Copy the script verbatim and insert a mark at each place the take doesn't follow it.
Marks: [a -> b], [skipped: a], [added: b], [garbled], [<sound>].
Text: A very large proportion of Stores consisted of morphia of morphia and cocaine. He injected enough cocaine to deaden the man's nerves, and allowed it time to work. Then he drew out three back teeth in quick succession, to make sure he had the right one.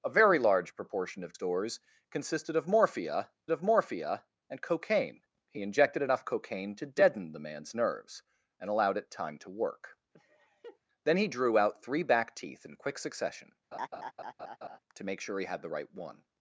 A very large proportion of Stores consisted of morphia of morphia and cocaine. He injected enough cocaine to deaden the man's nerves, and allowed it time to work. [laugh] Then he drew out three back teeth in quick succession, [laugh] to make sure he had the right one.